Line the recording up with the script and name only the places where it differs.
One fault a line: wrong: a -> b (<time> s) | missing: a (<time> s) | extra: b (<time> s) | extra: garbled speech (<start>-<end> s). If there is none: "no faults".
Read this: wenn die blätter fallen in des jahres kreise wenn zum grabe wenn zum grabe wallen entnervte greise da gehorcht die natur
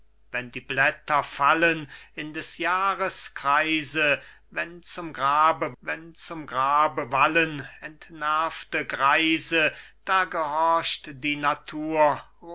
no faults